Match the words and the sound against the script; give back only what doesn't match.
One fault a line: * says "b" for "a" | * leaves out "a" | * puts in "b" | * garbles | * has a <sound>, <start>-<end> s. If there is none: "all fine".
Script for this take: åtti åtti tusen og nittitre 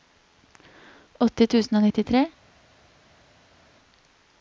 * leaves out "åtti"